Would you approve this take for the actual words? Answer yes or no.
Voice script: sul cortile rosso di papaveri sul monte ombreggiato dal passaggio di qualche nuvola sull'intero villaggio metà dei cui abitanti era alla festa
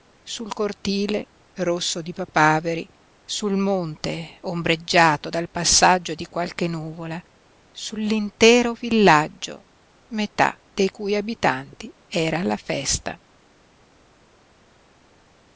yes